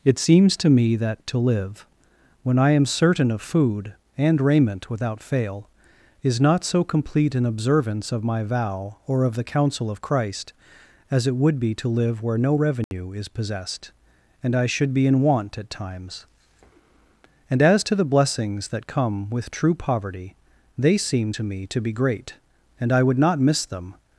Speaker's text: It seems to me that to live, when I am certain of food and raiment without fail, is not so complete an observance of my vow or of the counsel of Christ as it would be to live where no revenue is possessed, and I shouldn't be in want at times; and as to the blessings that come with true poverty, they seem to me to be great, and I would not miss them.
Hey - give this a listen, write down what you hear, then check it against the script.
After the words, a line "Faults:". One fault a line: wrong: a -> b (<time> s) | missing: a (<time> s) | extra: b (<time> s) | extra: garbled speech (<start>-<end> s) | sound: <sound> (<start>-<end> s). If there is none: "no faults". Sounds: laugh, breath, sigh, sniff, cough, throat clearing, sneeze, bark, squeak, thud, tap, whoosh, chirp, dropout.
It seems to me that to live, when I am certain of food and raiment without fail, is not so complete an observance of my vow or of the counsel of Christ as it would be to live where no revenue is possessed, and I should be in want at times; and as to the blessings that come with true poverty, they seem to me to be great, and I would not miss them.
Faults:
sound: dropout (12.8-12.9 s)
wrong: shouldn't -> should (14.7 s)